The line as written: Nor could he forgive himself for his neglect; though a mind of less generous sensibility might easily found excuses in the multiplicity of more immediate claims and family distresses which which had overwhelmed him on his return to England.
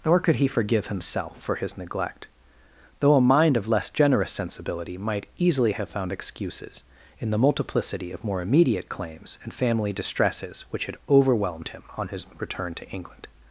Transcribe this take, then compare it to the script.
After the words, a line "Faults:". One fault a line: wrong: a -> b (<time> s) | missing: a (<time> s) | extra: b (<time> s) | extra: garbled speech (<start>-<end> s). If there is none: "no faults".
Nor could he forgive himself for his neglect; though a mind of less generous sensibility might easily have found excuses in the multiplicity of more immediate claims and family distresses which had overwhelmed him on his return to England.
Faults:
extra: have (5.7 s)
missing: which (10.9 s)